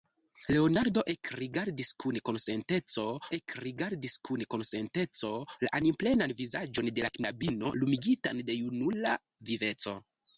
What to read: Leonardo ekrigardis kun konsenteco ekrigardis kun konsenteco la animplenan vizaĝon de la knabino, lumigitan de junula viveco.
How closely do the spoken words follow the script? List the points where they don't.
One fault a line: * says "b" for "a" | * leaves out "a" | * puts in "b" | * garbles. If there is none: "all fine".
all fine